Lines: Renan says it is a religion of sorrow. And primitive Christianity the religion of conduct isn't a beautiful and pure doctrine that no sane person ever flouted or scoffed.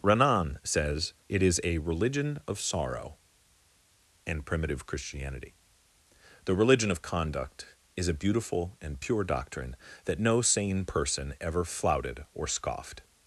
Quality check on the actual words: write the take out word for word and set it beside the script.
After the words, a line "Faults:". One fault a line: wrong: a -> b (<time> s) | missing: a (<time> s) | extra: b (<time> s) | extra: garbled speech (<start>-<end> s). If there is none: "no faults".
Renan says it is a religion of sorrow. And primitive Christianity the religion of conduct is a beautiful and pure doctrine that no sane person ever flouted or scoffed.
Faults:
wrong: isn't -> is (8.0 s)